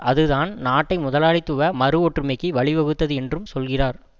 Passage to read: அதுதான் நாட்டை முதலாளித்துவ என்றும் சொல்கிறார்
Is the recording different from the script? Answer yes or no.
yes